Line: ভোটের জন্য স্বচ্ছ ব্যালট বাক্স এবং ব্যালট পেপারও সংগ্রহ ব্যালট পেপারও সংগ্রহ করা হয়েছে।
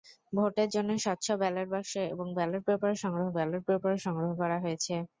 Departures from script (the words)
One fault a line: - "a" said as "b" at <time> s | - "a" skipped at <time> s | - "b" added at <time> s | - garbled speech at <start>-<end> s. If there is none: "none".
none